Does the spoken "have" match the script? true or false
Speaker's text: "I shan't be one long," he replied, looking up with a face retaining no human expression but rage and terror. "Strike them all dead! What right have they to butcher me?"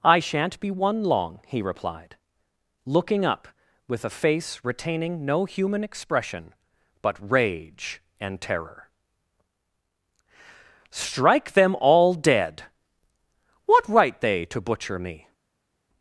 false